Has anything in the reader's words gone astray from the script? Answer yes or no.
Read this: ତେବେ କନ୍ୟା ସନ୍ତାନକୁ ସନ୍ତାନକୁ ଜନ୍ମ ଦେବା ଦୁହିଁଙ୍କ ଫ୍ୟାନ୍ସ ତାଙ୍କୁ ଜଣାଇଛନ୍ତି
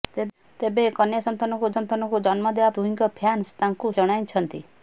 no